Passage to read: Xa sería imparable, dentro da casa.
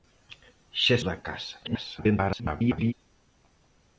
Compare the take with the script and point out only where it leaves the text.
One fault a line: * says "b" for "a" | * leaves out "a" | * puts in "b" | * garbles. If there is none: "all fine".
* leaves out "sería imparable dentro"
* garbles